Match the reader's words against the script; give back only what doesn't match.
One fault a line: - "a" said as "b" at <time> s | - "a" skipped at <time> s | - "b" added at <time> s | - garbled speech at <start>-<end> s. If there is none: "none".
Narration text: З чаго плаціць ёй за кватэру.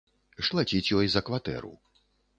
- "чаго" skipped at 0.5 s